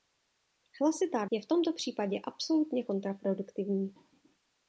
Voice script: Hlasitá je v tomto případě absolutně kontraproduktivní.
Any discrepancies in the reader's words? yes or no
no